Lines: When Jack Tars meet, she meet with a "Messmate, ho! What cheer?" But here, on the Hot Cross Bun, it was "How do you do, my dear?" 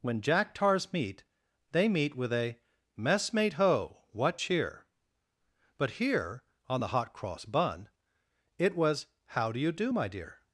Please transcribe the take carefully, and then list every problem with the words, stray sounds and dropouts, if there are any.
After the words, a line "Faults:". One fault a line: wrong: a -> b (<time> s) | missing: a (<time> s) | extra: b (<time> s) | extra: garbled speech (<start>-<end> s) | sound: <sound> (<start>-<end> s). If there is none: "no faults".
When Jack Tars meet, they meet with a "Messmate, ho! What cheer?" But here, on the Hot Cross Bun, it was "How do you do, my dear?"
Faults:
wrong: she -> they (1.7 s)